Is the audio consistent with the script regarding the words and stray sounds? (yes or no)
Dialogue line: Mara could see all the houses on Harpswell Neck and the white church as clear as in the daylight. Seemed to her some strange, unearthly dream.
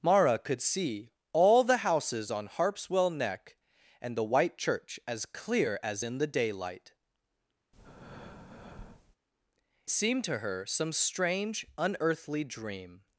no